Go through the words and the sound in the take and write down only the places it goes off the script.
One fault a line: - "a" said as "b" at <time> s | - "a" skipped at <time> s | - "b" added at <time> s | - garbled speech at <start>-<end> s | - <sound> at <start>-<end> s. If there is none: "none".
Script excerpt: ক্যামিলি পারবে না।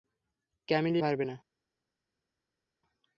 none